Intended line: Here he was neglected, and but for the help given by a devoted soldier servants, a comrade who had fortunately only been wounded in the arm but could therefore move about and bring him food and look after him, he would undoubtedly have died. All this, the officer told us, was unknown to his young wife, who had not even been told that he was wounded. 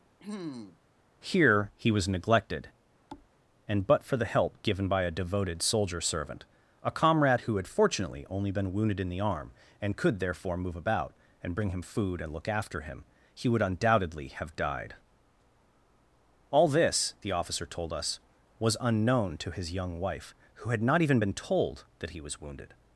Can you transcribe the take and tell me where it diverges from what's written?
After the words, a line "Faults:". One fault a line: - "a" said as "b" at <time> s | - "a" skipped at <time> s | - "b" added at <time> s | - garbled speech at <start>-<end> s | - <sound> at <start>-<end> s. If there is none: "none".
Here he was neglected, and but for the help given by a devoted soldier servant, a comrade who had fortunately only been wounded in the arm and could therefore move about and bring him food and look after him, he would undoubtedly have died. All this, the officer told us, was unknown to his young wife, who had not even been told that he was wounded.
Faults:
- throat clearing at 0.2-0.8 s
- thud at 3.1-3.3 s
- "servants" said as "servant" at 6.0 s
- "but" said as "and" at 9.8 s